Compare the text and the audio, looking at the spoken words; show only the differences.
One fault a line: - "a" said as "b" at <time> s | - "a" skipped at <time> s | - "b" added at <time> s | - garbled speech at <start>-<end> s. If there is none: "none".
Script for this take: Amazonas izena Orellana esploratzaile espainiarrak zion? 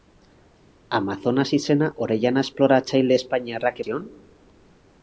none